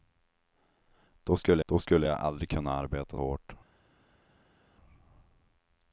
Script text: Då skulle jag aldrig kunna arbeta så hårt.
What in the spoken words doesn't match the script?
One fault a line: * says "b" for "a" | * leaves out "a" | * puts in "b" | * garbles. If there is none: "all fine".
* puts in "då skulle"
* leaves out "så"